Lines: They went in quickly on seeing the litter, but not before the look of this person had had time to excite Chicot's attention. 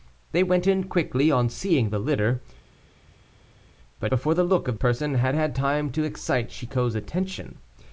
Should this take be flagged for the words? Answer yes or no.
yes